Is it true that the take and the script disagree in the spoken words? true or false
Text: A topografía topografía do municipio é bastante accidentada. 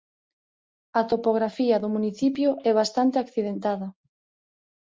true